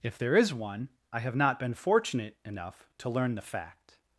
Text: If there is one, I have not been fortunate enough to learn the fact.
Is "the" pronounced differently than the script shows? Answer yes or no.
no